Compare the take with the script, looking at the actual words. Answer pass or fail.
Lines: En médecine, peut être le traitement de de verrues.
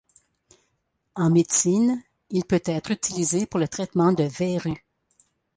fail